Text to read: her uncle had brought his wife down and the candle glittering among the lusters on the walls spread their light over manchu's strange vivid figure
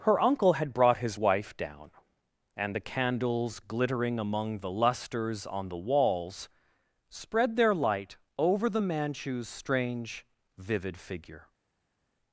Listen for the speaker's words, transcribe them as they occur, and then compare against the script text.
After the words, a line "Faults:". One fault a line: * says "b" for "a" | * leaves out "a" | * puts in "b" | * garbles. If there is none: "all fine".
her uncle had brought his wife down and the candles glittering among the lusters on the walls spread their light over the manchu's strange vivid figure
Faults:
* says "candles" for "candle"
* puts in "the"